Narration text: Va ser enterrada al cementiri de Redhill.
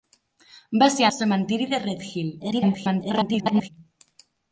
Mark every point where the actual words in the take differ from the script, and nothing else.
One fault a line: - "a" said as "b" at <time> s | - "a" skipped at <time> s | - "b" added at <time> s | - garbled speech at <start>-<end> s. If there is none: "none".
- "enterrada" skipped at 1.1 s
- garbled speech at 2.4-3.7 s